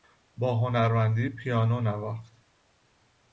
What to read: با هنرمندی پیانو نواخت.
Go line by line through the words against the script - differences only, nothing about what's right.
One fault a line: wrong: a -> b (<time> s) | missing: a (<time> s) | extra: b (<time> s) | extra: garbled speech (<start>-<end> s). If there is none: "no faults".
no faults